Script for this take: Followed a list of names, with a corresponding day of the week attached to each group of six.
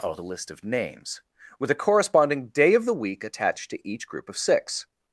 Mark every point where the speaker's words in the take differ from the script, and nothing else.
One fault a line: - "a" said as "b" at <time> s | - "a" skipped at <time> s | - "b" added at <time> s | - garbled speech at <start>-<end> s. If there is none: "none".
none